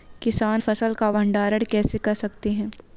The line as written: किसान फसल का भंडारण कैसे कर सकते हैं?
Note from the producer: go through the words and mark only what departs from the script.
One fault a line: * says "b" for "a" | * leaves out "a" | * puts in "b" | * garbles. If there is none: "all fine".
all fine